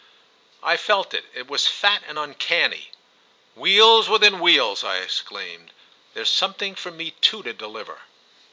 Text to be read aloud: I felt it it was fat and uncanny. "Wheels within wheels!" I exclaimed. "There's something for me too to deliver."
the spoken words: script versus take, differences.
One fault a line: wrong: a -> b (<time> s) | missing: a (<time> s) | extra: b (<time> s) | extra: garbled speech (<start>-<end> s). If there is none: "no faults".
no faults